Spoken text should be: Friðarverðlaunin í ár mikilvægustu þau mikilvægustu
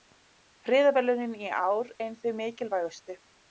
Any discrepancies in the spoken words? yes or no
yes